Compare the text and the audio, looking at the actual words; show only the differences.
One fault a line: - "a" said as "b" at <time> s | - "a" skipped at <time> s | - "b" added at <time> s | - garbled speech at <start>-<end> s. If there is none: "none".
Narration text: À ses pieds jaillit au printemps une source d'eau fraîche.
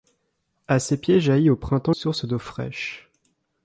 - "une" skipped at 1.9 s